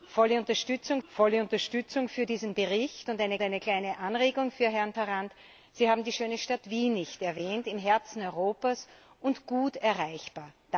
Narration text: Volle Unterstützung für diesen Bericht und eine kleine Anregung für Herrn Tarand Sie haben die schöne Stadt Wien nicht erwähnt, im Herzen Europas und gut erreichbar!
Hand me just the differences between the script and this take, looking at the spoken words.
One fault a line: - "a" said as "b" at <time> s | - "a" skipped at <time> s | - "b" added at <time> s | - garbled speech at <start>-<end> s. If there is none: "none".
- "volle Unterstützung" added at 1.1 s
- "eine" added at 3.4 s